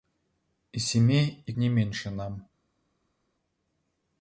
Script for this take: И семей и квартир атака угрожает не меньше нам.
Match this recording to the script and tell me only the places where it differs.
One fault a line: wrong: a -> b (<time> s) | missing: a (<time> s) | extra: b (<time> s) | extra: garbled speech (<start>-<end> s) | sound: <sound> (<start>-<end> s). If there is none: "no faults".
missing: квартир атака угрожает (1.5 s)